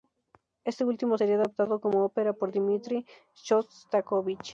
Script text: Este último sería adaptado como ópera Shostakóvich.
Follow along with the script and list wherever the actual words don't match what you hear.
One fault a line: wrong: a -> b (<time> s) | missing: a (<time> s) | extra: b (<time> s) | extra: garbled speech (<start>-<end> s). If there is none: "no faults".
extra: por Dmitri (2.3 s)